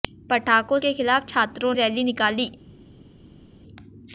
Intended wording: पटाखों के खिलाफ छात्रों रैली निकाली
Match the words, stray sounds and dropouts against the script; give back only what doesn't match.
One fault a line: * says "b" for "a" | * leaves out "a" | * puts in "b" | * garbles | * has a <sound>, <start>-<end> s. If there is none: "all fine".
all fine